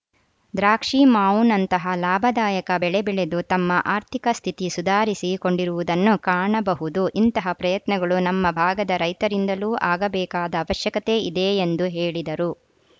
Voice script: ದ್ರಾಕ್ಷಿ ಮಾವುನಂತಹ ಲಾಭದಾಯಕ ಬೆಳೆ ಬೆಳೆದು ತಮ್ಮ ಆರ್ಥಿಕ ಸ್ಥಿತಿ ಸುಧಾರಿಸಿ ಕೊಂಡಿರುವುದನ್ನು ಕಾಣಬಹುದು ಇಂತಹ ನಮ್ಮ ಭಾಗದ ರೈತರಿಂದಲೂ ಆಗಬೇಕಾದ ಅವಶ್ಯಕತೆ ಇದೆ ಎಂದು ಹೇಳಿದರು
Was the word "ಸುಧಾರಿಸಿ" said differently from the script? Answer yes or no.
no